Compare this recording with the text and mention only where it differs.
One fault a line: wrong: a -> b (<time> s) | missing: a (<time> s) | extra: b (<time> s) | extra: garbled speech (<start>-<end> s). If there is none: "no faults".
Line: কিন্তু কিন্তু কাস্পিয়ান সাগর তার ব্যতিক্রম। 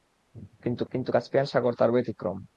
no faults